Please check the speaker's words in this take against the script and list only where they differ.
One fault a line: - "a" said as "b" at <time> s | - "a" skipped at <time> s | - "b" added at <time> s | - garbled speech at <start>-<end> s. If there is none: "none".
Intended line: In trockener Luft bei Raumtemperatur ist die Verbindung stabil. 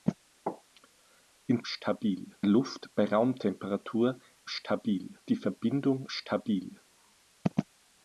- "trockener" said as "stabil" at 1.6 s
- "ist" said as "stabil" at 4.5 s